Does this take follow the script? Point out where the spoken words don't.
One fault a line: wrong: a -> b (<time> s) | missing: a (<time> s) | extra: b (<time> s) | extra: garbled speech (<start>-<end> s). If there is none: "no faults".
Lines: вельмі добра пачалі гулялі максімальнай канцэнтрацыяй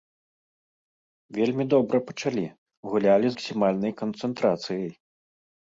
no faults